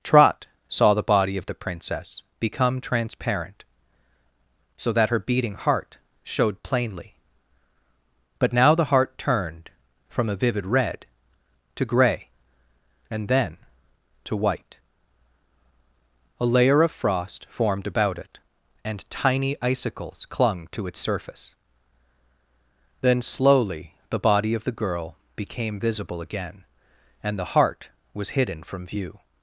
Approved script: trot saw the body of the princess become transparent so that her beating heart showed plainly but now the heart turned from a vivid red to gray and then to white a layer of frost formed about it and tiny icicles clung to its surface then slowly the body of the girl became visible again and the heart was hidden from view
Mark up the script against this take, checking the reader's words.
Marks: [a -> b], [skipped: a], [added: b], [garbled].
trot saw the body of the princess become transparent so that her beating heart showed plainly but now the heart turned from a vivid red to gray and then to white a layer of frost formed about it and tiny icicles clung to its surface then slowly the body of the girl became visible again and the heart was hidden from view